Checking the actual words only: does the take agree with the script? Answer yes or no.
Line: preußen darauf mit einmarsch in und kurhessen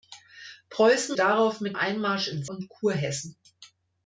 yes